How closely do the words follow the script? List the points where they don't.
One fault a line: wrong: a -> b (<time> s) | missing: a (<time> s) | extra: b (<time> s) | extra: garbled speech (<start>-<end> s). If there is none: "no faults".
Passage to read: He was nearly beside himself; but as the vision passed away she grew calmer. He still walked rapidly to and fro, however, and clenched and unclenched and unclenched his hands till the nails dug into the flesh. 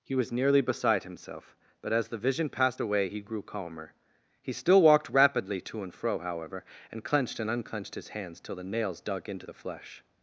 wrong: she -> he (3.1 s)
missing: and unclenched (7.9 s)